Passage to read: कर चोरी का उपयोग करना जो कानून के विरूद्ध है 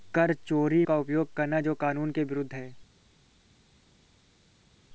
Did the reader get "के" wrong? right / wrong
right